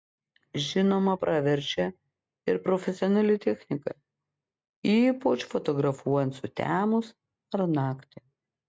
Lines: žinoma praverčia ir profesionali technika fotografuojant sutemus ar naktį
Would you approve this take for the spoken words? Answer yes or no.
no